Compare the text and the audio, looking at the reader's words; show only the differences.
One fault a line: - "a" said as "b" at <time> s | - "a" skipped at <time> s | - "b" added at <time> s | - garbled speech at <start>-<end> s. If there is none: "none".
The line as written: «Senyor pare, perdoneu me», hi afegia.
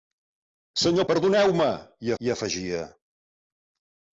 - "pare" skipped at 1.1 s
- "hi" added at 2.2 s